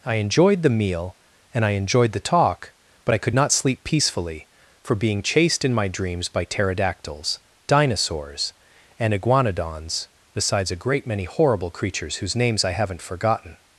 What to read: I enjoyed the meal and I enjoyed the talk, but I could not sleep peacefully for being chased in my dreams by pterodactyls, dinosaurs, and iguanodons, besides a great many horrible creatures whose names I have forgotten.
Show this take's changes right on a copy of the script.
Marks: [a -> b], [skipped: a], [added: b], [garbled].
I enjoyed the meal and I enjoyed the talk, but I could not sleep peacefully for being chased in my dreams by pterodactyls, dinosaurs, and iguanodons, besides a great many horrible creatures whose names I [have -> haven't] forgotten.